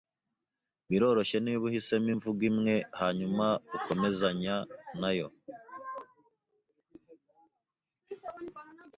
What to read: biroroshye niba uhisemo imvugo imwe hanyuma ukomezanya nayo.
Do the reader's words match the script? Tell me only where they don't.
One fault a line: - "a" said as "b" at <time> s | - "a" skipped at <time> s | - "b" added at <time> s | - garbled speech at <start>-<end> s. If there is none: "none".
none